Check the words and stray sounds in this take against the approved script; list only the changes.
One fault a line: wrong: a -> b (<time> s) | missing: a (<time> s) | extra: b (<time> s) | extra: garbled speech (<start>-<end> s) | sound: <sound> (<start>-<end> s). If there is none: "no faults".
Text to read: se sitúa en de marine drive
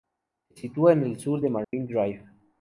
extra: el sur (1.0 s)
sound: dropout (1.6-1.7 s)